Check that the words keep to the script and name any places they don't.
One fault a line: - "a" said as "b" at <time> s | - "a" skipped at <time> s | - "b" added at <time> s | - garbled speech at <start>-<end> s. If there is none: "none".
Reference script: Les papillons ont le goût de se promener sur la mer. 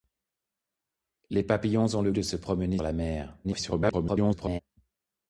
- "goût" skipped at 2.1 s
- "sur" skipped at 2.8 s
- garbled speech at 3.4-4.6 s